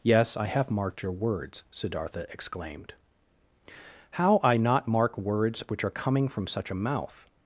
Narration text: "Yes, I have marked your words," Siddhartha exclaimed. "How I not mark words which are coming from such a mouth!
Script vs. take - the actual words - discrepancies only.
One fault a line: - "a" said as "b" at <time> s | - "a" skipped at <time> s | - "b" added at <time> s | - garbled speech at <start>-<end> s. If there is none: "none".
none